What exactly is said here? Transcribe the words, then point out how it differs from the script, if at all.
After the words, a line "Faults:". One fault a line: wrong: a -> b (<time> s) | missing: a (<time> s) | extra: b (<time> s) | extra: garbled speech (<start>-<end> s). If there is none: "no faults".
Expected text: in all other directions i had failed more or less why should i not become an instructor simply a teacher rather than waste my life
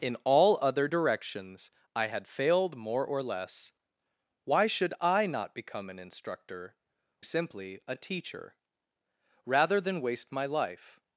in all other directions i had failed more or less why should i not become an instructor simply a teacher rather than waste my life
Faults:
no faults